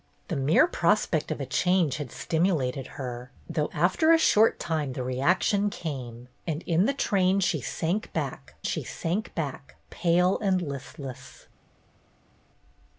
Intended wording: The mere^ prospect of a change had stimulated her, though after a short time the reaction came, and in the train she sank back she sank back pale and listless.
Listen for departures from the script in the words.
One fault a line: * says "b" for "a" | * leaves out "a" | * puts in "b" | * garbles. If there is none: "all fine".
all fine